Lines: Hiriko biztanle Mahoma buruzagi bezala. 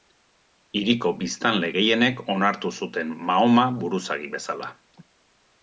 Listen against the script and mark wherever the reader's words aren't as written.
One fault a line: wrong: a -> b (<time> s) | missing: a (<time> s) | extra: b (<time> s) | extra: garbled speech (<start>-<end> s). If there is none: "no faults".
extra: gehienek onartu zuten (1.7 s)